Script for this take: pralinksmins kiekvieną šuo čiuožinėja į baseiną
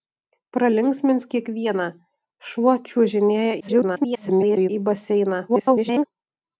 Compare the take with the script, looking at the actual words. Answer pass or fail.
fail